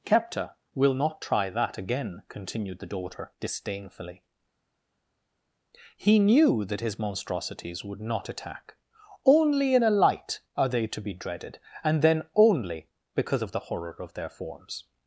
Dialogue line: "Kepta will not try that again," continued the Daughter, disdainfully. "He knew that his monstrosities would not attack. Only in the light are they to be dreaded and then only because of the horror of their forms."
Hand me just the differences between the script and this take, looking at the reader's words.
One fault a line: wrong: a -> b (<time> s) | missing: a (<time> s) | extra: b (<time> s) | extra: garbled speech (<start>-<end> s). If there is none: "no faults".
wrong: the -> a (9.8 s)